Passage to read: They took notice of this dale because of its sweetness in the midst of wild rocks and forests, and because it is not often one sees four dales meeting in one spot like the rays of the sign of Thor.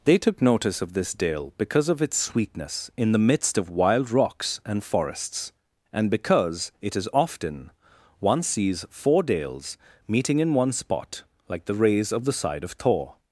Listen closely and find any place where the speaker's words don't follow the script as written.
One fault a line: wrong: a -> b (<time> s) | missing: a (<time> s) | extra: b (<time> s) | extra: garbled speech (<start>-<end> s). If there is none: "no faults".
missing: not (7.1 s)
wrong: sign -> side (12.3 s)